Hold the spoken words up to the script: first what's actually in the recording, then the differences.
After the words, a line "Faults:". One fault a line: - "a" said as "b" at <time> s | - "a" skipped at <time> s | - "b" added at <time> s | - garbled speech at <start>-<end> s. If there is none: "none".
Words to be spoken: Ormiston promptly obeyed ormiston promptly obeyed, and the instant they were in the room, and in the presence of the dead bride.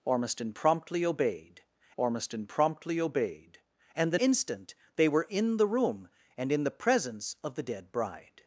Ormiston promptly obeyed ormiston promptly obeyed, and the instant they were in the room, and in the presence of the dead bride.
Faults:
none